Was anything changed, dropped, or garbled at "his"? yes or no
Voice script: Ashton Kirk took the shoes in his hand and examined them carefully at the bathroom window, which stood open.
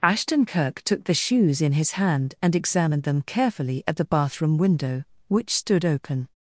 no